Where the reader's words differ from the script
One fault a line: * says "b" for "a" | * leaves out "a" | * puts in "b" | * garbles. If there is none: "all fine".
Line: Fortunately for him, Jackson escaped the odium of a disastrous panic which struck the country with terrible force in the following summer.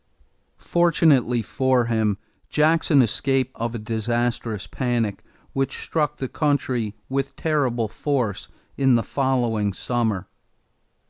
* leaves out "the odium"